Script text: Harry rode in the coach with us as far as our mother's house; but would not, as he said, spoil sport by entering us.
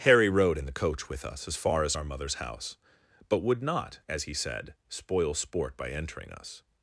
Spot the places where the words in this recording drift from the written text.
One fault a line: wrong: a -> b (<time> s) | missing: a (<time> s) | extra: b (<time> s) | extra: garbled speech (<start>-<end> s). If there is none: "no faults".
no faults